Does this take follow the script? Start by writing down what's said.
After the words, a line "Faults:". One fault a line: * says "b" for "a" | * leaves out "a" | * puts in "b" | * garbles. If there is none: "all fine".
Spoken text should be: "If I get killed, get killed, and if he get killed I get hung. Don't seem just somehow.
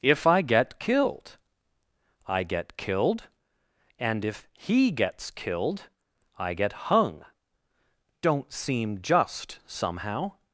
"If I get killed, I get killed, and if he gets killed I get hung. Don't seem just somehow.
Faults:
* puts in "I"
* says "gets" for "get"